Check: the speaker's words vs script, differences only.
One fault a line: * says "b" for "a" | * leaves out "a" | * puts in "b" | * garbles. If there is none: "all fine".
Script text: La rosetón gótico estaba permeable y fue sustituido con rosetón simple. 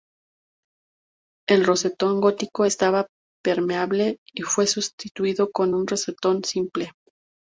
* says "El" for "La"
* puts in "un"